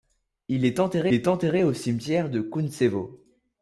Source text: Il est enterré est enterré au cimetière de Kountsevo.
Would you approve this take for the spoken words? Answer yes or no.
yes